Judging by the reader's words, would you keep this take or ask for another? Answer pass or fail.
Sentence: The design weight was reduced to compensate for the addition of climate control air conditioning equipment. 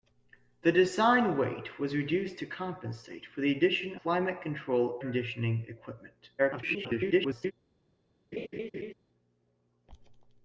fail